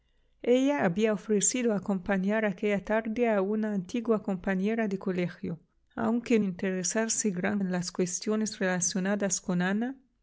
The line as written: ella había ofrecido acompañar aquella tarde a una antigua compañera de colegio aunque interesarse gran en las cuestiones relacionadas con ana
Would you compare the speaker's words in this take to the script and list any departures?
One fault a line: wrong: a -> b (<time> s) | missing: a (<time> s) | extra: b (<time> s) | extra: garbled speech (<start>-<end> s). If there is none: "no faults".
no faults